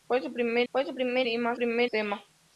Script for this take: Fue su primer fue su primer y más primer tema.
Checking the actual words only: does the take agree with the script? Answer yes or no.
yes